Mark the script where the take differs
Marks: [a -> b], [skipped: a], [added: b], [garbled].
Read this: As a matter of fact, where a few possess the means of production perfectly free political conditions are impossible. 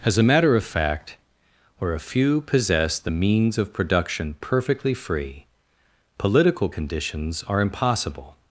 As a matter of fact, where a few possess the means of production perfectly free political conditions are impossible.